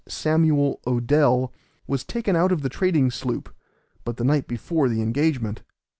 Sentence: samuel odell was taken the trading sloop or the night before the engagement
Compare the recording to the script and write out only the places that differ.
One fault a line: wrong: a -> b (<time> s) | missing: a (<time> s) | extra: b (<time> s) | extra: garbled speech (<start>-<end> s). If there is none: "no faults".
extra: out of (2.4 s)
wrong: or -> but (4.0 s)